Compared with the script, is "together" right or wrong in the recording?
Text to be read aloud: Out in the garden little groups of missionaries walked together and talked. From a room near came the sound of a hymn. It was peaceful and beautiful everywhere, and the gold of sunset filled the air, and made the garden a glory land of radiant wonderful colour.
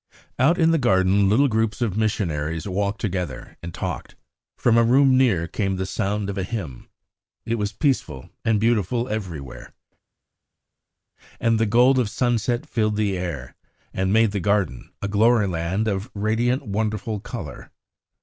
right